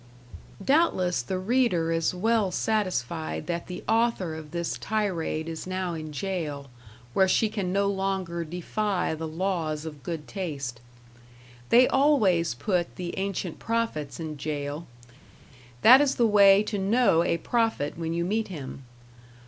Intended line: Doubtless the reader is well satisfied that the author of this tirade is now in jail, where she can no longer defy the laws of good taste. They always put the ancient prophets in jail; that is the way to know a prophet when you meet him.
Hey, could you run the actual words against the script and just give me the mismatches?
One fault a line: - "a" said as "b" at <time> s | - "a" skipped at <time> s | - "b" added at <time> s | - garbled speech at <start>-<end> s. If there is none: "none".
none